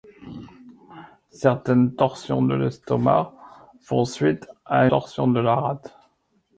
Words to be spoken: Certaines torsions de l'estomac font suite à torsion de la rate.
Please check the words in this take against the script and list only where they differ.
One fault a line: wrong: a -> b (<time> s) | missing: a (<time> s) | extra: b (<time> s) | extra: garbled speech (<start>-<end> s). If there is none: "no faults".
no faults